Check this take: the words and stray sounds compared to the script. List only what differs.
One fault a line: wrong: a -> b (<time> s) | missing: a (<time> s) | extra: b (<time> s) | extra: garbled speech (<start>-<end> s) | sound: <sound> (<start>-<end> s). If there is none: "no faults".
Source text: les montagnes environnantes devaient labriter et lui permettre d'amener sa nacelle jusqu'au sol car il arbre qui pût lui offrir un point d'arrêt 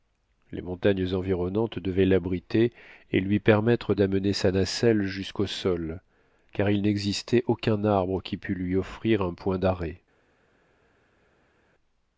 extra: n'existait aucun (6.8 s)